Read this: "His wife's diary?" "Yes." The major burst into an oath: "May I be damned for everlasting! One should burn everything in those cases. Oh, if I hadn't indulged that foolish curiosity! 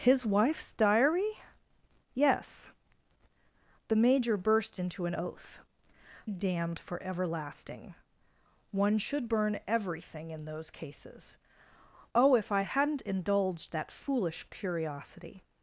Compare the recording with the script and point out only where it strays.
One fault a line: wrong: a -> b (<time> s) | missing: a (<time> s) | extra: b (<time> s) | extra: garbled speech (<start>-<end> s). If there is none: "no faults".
missing: May I be (5.6 s)